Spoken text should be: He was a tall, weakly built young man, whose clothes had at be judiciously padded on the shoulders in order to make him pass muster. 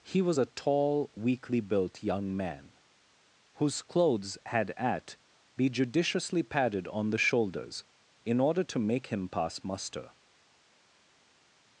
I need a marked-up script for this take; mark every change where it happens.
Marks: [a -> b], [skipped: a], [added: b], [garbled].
He was a tall, weakly built young man, whose clothes had at be judiciously padded on the shoulders in order to make him pass muster.